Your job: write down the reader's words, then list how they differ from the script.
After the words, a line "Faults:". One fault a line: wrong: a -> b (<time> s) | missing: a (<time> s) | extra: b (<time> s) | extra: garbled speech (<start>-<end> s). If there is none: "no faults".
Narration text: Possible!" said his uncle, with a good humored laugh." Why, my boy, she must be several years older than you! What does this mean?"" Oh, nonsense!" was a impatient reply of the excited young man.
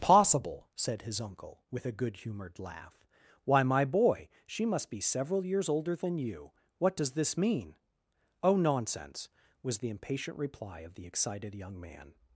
Possible!" said his uncle, with a good humored laugh." Why, my boy, she must be several years older than you! What does this mean?"" Oh, nonsense!" was the impatient reply of the excited young man.
Faults:
wrong: a -> the (9.8 s)